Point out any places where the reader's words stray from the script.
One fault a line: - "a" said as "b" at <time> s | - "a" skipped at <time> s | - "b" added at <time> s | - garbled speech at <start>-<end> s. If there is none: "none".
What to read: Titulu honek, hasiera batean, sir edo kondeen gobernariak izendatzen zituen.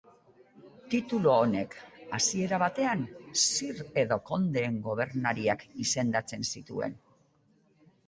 none